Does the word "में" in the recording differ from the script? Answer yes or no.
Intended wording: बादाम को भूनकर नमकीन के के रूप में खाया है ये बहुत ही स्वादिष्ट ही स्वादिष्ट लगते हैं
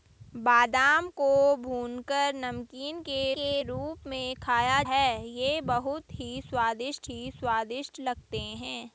no